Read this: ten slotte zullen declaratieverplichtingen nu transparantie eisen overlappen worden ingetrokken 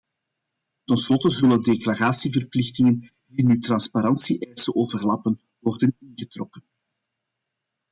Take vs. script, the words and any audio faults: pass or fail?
fail